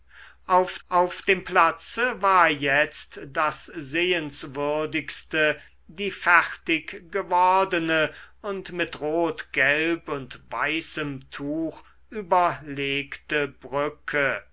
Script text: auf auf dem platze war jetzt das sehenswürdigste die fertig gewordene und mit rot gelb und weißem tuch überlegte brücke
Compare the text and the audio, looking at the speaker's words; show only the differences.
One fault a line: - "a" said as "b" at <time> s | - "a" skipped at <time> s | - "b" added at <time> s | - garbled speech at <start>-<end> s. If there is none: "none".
none